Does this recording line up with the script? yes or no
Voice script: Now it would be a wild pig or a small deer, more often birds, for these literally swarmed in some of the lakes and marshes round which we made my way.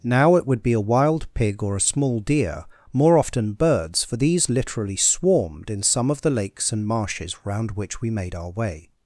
no